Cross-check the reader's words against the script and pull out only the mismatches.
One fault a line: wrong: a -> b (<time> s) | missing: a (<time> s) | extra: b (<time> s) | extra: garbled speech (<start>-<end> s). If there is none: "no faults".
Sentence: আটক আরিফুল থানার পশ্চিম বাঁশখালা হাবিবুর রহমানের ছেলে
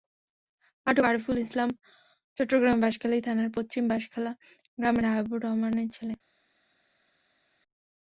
extra: ইসলাম চট্টগ্রামের বাঁশখালী (1.4 s)
extra: গ্রামের (4.8 s)